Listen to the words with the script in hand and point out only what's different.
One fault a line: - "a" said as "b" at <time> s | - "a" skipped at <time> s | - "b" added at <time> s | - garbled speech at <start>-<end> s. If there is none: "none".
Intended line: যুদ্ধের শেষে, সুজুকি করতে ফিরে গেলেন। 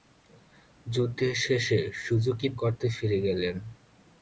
none